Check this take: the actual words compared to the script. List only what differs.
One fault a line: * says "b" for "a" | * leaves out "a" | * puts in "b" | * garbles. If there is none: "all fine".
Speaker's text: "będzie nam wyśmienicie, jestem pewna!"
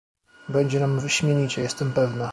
all fine